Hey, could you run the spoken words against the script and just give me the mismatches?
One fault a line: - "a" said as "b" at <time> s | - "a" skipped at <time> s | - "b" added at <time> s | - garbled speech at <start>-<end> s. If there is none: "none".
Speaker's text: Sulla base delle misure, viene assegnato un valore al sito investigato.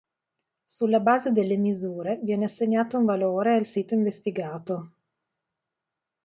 none